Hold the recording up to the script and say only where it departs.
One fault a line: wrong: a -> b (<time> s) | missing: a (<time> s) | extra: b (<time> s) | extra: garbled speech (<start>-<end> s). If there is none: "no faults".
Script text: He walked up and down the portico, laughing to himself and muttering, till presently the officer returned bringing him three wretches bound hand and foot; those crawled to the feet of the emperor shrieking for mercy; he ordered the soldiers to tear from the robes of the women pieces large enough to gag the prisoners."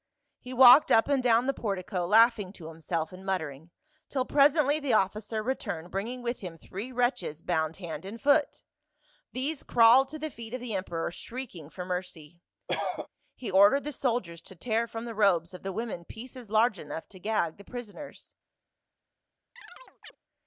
extra: with (6.2 s)
wrong: those -> these (9.3 s)